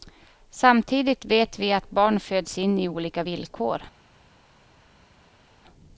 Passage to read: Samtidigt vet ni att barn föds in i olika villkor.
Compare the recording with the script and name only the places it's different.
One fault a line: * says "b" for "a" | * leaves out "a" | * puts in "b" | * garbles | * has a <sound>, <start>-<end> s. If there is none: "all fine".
* says "vi" for "ni"